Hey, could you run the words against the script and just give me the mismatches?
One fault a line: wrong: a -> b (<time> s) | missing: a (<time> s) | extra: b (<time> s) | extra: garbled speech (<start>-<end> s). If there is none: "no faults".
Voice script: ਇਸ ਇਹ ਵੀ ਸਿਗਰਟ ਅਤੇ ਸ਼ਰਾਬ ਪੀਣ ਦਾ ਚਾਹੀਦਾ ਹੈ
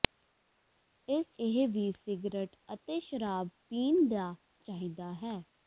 no faults